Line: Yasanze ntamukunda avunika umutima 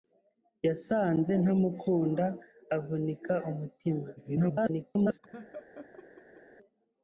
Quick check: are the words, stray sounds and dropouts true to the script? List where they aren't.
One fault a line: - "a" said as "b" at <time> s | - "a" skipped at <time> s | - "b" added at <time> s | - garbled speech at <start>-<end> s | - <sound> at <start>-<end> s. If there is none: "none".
- garbled speech at 4.2-5.2 s
- laugh at 5.3-6.4 s